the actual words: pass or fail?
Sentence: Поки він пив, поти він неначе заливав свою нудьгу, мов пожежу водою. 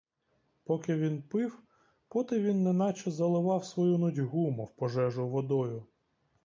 pass